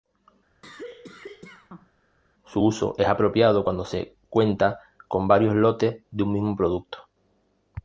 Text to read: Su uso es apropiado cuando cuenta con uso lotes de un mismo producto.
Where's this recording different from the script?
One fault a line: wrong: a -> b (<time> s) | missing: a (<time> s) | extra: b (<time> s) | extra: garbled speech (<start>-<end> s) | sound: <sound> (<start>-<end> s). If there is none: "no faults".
sound: cough (0.6-1.9 s)
extra: se (3.8 s)
wrong: uso -> varios (5.3 s)